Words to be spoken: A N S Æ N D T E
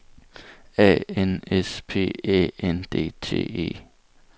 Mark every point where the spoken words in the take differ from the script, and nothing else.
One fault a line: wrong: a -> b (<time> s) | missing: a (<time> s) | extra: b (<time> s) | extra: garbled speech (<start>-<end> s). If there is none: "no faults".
extra: P (1.9 s)